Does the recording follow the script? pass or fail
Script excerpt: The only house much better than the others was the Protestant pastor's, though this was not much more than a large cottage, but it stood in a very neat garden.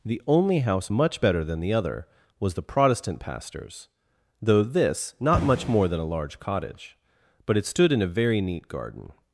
fail